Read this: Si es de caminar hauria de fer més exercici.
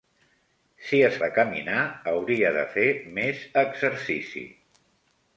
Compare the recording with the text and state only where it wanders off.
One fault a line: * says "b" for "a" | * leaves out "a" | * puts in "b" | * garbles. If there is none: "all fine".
all fine